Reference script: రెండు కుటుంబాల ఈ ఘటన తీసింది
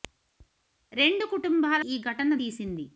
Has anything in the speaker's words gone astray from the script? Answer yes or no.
no